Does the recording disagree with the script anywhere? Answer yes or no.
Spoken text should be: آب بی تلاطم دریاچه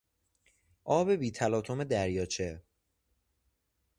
no